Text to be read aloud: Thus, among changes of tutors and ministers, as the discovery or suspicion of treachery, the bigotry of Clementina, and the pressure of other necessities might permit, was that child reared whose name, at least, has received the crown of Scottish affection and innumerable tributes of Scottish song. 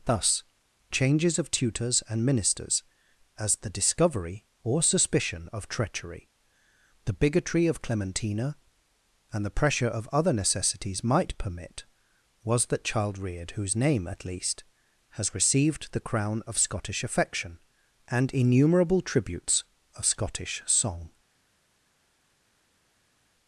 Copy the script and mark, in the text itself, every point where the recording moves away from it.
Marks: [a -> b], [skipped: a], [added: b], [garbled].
Thus, [skipped: among] changes of tutors and ministers, as the discovery or suspicion of treachery, the bigotry of Clementina, and the pressure of other necessities might permit, was that child reared whose name, at least, has received the crown of Scottish affection and innumerable tributes of Scottish song.